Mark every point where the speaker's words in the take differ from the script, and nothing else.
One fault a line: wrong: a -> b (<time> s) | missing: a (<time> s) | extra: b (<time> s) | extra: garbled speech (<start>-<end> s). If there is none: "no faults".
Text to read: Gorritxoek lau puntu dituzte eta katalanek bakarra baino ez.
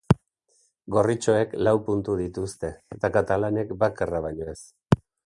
no faults